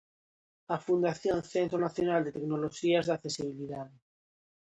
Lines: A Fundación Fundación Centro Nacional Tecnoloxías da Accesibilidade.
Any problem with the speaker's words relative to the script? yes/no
yes